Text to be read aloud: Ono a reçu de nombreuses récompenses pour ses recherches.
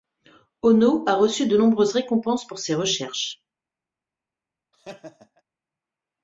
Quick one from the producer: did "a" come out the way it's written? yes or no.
yes